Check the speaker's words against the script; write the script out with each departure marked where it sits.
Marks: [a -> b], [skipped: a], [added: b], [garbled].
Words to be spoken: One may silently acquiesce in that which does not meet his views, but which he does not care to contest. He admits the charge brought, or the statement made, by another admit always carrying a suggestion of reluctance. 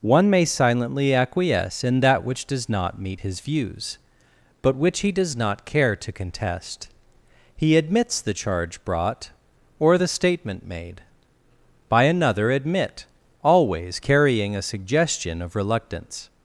One may silently acquiesce in that which does not meet his views, but which he does not care to contest. He admits the charge brought, or the statement made, by another admit always carrying a suggestion of reluctance.